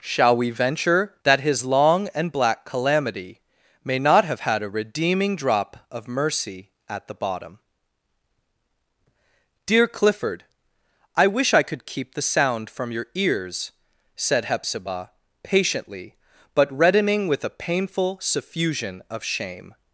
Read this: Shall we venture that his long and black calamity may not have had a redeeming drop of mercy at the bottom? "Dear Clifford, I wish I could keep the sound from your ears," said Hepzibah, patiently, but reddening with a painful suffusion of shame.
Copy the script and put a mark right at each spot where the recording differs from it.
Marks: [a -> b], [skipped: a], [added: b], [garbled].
Shall we venture that his long and black calamity may not have had a redeeming drop of mercy at the bottom? "Dear Clifford, I wish I could keep the sound from your ears," said Hepzibah, patiently, but reddening with a painful suffusion of shame.